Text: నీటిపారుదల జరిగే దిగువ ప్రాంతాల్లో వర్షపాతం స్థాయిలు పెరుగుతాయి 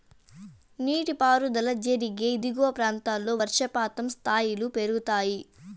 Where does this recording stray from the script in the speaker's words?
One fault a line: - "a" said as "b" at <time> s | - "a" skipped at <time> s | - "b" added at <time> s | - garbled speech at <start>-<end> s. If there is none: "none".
none